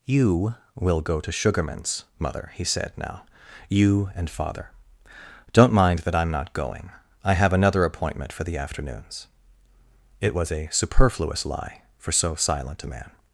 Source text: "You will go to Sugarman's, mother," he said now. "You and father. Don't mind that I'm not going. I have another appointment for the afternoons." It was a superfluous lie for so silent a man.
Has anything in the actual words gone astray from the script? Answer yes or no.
no